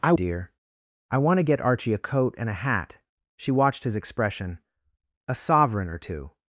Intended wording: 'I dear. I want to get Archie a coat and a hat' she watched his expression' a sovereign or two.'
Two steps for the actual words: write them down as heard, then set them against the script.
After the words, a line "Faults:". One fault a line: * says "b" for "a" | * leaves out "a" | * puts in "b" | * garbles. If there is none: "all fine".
'I dear. I want to get Archie a coat and a hat' she watched his expression' a sovereign or two.'
Faults:
all fine